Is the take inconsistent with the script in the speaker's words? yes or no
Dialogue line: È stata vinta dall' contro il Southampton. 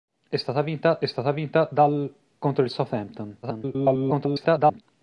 yes